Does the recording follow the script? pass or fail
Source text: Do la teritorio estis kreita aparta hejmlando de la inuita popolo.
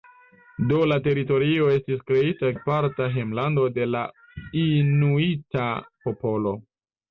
pass